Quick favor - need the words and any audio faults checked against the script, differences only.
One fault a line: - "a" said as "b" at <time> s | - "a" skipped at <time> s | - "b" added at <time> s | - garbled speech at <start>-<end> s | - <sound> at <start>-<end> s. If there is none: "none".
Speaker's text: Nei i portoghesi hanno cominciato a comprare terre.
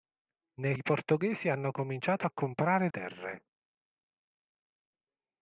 none